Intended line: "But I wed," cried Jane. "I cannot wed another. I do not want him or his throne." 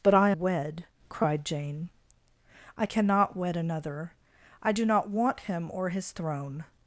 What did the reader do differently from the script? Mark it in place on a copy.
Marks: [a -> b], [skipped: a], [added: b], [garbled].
"But I wed," cried Jane. "I cannot wed another. I do not want him or his throne."